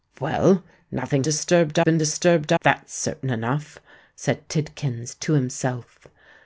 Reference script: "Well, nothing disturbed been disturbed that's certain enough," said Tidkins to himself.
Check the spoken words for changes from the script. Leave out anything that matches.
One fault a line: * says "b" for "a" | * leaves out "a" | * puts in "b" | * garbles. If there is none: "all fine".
all fine